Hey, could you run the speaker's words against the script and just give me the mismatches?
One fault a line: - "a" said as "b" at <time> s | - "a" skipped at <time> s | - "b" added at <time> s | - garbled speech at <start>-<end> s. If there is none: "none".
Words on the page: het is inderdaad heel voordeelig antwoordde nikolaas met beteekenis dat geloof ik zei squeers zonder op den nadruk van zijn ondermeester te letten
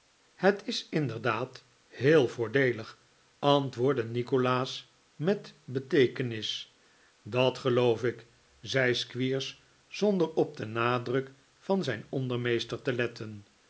none